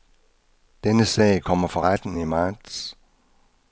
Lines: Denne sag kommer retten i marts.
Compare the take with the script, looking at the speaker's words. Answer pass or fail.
fail